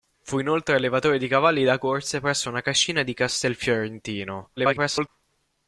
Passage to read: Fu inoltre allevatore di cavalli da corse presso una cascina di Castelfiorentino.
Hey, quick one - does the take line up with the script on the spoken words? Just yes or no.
no